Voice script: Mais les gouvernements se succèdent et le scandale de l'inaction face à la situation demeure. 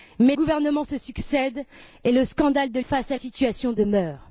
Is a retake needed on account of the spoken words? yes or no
yes